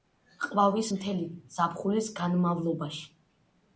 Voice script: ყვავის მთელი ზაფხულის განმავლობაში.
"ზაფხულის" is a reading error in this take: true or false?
false